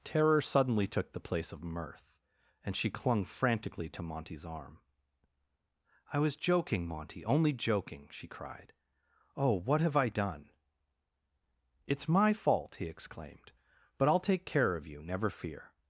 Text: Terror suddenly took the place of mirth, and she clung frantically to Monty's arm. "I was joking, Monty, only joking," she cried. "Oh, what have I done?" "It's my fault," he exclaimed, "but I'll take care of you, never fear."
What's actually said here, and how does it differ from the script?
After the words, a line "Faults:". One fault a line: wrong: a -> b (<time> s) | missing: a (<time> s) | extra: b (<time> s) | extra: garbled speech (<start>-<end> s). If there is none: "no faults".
Terror suddenly took the place of mirth, and she clung frantically to Monty's arm. "I was joking, Monty, only joking," she cried. "Oh, what have I done?" "It's my fault," he exclaimed, "but I'll take care of you, never fear."
Faults:
no faults